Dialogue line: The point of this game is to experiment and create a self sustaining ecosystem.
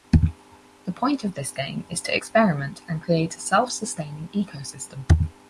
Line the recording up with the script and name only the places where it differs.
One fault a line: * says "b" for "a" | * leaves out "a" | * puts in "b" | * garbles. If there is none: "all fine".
all fine